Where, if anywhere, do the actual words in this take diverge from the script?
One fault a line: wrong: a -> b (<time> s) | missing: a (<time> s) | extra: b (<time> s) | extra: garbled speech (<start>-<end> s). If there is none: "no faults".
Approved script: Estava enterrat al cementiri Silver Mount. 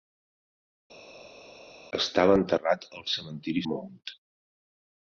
missing: Silver (3.6 s)